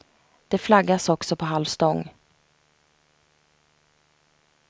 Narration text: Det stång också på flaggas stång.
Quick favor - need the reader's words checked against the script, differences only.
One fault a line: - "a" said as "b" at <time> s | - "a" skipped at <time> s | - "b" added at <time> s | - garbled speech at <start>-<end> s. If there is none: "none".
- "stång" said as "flaggas" at 0.6 s
- "flaggas" said as "halv" at 1.5 s